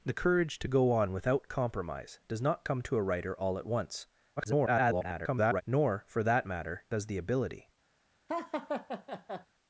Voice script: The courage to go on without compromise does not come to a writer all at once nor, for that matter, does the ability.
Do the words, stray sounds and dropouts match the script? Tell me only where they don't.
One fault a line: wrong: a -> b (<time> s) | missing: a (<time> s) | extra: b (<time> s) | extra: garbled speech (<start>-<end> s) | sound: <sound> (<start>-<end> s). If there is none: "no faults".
extra: garbled speech (4.4-5.6 s)
sound: laugh (8.3-9.5 s)